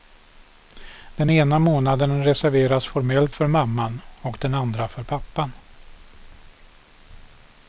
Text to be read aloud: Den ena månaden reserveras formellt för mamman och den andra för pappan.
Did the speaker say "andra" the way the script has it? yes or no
yes